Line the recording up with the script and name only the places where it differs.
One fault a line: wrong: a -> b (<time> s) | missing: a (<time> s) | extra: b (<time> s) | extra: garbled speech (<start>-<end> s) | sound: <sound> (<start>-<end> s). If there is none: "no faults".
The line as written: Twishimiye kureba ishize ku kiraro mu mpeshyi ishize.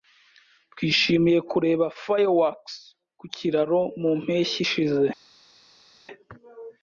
wrong: ishize -> fireworks (2.0 s)